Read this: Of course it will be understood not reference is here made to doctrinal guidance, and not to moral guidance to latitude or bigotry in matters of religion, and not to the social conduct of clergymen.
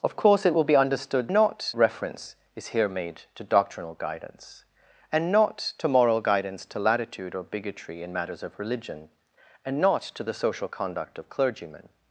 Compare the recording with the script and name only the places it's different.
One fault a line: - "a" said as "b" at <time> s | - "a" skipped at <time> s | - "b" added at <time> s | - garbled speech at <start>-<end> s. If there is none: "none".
none